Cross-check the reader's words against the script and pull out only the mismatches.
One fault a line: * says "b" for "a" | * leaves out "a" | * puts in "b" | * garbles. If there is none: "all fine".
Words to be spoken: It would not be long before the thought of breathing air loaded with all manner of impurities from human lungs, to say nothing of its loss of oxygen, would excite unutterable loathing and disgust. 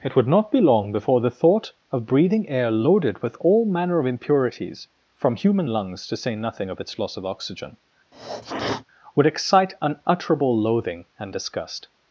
all fine